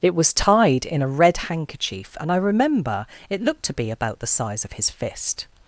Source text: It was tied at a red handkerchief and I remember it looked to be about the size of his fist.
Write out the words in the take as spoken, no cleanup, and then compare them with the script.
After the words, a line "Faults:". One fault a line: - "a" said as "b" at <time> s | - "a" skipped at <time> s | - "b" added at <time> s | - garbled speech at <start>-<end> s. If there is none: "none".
It was tied in a red handkerchief and I remember it looked to be about the size of his fist.
Faults:
- "at" said as "in" at 0.8 s